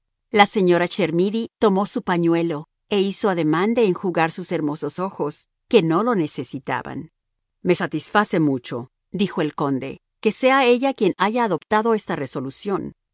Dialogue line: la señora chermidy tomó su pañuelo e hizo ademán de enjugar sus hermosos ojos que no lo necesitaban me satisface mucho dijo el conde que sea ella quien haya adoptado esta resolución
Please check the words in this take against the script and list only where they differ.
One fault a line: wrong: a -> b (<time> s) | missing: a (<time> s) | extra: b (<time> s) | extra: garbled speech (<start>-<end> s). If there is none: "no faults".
no faults